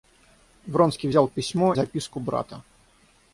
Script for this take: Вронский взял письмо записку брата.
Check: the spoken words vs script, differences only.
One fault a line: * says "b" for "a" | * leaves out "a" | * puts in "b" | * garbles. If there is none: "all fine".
all fine